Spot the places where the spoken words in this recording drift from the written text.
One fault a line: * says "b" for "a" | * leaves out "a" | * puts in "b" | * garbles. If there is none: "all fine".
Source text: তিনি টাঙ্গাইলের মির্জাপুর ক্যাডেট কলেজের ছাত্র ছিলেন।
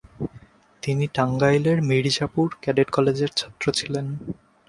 all fine